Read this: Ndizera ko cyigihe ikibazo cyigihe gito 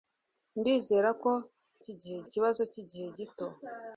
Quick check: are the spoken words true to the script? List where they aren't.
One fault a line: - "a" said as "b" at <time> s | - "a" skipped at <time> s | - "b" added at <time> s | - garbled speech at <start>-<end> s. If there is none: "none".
none